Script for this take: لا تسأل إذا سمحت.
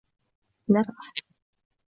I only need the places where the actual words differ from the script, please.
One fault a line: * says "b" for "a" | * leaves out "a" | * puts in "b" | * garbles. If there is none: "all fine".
* leaves out "تسأل إذا"